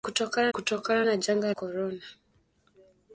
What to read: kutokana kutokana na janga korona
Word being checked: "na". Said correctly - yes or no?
yes